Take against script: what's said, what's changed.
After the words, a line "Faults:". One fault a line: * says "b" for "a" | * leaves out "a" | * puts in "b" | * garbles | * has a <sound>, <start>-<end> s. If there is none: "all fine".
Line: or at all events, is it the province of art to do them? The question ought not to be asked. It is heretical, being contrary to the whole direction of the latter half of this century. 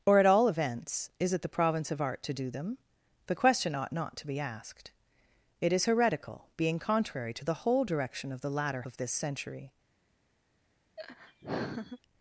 or at all events, is it the province of art to do them? The question ought not to be asked. It is heretical, being contrary to the whole direction of the latter of this century.
Faults:
* leaves out "half"
* has a laugh, 11.0-12.0 s